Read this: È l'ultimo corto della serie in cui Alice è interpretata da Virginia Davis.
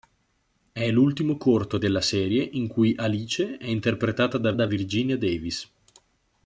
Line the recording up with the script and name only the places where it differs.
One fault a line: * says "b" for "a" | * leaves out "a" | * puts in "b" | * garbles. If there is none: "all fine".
* puts in "da"